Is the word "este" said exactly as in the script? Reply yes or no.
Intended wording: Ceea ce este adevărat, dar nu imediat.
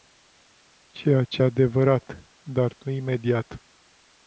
no